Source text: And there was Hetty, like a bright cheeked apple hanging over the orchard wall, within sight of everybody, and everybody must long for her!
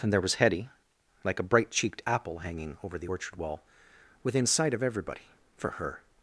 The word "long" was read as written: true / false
false